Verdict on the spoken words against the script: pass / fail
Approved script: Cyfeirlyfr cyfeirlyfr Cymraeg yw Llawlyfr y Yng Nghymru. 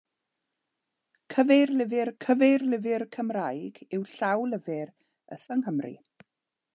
pass